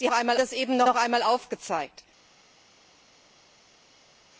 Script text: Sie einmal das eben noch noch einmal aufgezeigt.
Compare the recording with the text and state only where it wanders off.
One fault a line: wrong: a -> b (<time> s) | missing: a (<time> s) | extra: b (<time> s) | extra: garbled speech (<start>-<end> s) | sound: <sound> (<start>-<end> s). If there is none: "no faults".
no faults